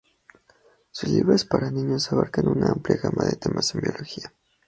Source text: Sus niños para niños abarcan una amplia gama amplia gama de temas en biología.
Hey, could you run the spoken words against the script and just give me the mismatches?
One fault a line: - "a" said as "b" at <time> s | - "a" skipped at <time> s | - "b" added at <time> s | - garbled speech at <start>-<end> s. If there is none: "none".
- "niños" said as "libros" at 1.1 s
- "amplia gama" skipped at 3.2 s